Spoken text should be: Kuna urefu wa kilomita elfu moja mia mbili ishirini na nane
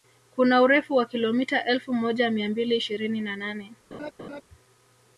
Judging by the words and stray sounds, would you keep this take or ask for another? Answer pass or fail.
fail